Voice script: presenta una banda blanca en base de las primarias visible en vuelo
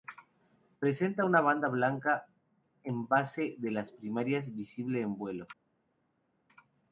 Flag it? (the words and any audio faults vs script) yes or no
no